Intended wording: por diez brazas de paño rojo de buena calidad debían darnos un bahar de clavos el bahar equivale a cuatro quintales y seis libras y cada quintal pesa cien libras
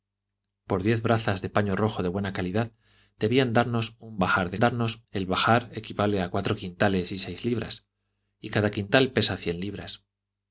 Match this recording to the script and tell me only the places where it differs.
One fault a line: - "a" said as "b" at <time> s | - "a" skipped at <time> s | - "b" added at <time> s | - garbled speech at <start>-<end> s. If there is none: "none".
- "clavos" said as "darnos" at 4.6 s